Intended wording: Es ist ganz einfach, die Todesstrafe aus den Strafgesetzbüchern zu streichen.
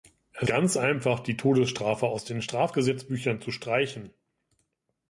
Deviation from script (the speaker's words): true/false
true